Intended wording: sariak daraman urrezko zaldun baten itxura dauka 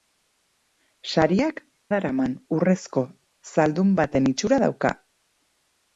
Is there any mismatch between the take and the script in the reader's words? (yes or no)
no